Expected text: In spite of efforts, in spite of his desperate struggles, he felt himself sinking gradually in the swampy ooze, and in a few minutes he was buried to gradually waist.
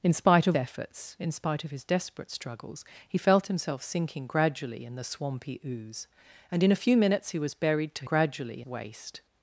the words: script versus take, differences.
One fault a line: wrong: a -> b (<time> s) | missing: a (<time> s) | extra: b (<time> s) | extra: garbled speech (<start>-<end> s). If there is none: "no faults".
no faults